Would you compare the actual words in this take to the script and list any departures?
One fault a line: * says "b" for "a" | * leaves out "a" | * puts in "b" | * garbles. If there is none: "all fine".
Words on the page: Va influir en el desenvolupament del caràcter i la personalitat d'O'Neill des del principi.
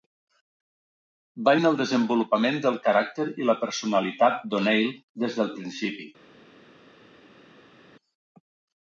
* leaves out "influir"